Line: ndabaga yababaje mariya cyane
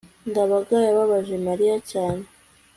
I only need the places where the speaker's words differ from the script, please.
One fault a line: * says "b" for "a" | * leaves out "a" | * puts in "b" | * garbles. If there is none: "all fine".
all fine